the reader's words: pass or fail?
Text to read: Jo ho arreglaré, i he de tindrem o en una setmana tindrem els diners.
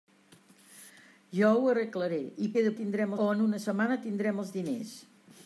pass